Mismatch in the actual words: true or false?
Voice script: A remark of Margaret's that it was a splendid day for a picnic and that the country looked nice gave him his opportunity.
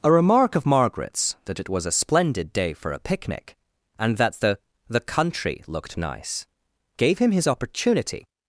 true